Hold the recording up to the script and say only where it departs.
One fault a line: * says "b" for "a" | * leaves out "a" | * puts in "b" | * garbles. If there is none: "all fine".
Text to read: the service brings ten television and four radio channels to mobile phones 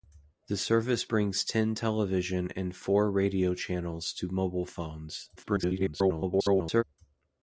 * garbles